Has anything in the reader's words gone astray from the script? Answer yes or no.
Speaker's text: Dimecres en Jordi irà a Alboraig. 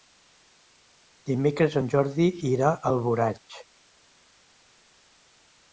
no